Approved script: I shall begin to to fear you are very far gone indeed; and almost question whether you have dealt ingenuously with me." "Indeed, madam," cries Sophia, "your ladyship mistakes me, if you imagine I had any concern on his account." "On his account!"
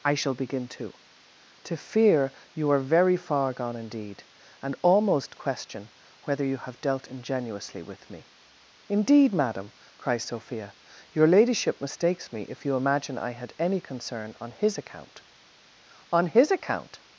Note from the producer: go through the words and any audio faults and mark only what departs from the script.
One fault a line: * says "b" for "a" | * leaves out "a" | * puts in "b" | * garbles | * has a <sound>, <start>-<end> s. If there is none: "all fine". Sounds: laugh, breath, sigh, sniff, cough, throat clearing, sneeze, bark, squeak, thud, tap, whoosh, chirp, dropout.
all fine